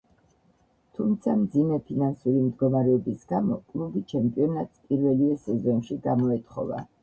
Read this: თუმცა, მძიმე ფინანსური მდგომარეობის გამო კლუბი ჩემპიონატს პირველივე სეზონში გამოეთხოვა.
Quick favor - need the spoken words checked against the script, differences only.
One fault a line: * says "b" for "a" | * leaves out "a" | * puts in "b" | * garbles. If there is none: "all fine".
all fine